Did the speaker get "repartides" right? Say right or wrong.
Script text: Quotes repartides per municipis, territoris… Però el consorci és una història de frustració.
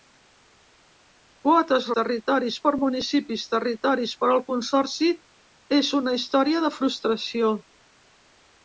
wrong